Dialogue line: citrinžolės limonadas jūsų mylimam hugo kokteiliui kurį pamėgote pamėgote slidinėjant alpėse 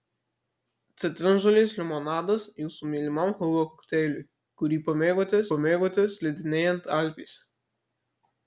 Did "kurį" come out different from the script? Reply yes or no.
no